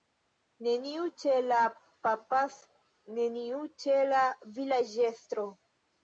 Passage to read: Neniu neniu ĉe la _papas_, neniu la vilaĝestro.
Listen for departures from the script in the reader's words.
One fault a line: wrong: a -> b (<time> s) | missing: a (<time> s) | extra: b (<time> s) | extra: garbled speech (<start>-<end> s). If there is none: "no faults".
missing: neniu (1.0 s)
extra: ĉe (3.8 s)